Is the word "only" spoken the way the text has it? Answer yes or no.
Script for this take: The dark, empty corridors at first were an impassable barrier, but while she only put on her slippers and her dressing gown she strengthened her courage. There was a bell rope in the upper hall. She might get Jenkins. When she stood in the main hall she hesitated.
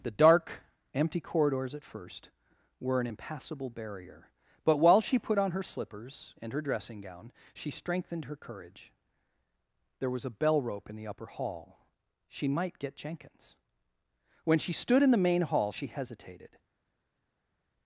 no